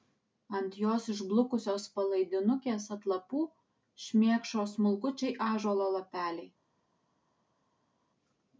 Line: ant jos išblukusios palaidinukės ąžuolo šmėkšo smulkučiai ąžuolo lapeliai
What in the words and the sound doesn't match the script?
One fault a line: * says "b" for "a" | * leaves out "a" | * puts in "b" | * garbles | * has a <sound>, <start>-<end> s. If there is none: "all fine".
* says "atlapų" for "ąžuolo"